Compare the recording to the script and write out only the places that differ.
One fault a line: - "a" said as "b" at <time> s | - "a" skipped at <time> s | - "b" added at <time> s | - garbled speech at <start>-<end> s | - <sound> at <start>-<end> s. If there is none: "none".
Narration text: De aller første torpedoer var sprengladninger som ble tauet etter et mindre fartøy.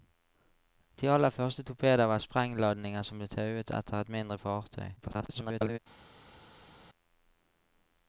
- garbled speech at 5.0-5.8 s